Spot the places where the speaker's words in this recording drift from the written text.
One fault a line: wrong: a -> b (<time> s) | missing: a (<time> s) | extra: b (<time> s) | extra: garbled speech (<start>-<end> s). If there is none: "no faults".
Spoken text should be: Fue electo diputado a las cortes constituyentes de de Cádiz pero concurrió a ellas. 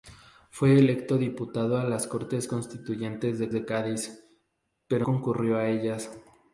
no faults